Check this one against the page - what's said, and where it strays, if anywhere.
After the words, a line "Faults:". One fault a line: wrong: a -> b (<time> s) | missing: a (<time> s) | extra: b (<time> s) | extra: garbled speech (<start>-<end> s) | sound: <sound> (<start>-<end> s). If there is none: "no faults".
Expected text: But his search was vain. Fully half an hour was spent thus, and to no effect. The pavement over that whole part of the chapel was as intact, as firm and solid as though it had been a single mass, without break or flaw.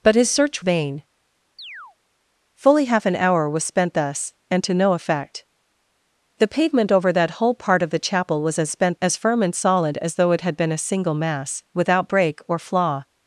But his search vain. Fully half an hour was spent thus, and to no effect. The pavement over that whole part of the chapel was as spent, as firm and solid as though it had been a single mass, without break or flaw.
Faults:
missing: was (0.6 s)
sound: chirp (1.6-2.0 s)
wrong: intact -> spent (8.7 s)